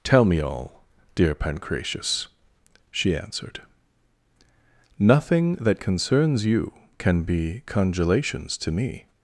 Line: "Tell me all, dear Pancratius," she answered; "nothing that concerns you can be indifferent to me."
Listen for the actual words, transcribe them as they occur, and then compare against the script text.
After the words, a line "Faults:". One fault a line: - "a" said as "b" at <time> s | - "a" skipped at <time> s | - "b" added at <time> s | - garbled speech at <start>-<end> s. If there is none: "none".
"Tell me all, dear Pancratius," she answered; "nothing that concerns you can be congelations to me."
Faults:
- "indifferent" said as "congelations" at 7.7 s